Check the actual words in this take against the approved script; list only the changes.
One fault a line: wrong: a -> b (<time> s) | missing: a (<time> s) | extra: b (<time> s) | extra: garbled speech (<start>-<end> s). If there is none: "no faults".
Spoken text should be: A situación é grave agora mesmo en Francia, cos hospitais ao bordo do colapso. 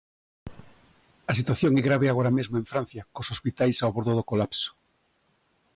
no faults